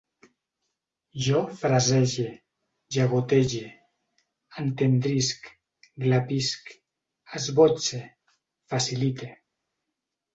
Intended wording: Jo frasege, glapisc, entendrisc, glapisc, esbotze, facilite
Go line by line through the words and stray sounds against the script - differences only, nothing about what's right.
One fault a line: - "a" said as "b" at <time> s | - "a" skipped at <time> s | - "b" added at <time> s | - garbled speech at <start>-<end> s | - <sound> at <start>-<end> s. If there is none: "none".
- "glapisc" said as "llagotege" at 3.0 s